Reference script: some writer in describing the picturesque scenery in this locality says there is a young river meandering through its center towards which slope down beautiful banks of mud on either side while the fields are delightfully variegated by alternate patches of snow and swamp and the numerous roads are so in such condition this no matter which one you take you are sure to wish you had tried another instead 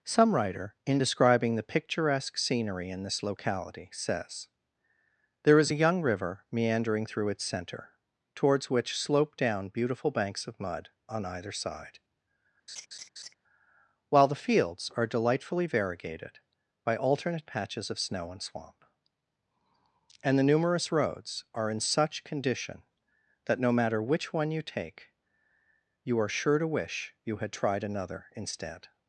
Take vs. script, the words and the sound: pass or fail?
fail